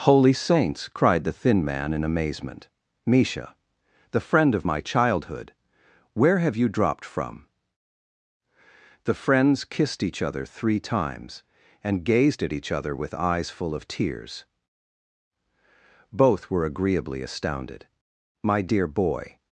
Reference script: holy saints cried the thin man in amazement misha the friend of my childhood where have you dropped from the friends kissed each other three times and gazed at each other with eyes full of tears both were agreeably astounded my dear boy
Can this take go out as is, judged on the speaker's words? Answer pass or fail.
pass